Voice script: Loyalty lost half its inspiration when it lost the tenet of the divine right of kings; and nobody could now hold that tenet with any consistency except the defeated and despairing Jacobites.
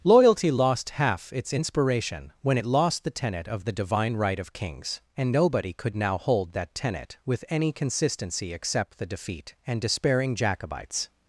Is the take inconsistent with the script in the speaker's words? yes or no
yes